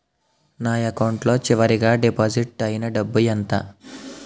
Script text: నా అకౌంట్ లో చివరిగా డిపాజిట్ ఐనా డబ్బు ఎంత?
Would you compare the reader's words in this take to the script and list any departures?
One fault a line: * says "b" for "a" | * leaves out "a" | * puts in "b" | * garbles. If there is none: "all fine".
all fine